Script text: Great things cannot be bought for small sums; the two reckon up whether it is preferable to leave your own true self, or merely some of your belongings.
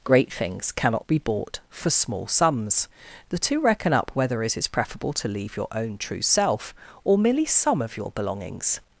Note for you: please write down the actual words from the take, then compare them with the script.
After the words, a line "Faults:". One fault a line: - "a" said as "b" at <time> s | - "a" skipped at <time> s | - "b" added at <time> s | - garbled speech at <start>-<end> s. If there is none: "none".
Great things cannot be bought for small sums; the two reckon up whether it is preferable to leave your own true self, or merely some of your belongings.
Faults:
none